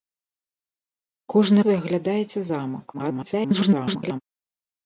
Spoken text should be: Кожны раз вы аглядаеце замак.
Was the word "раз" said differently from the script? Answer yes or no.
yes